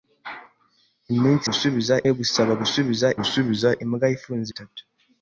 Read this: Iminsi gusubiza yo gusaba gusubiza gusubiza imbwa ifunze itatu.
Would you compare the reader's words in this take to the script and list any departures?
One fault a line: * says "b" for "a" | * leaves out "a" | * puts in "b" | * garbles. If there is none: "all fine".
all fine